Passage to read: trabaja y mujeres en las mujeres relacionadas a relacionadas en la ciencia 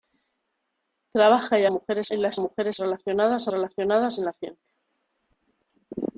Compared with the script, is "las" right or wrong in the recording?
right